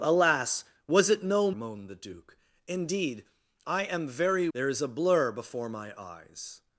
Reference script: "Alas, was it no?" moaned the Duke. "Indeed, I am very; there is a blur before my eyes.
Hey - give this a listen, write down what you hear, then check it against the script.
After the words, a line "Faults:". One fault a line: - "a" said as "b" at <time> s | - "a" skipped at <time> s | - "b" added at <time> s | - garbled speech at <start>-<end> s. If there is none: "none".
"Alas, was it no?" moaned the Duke. "Indeed, I am very; there is a blur before my eyes.
Faults:
none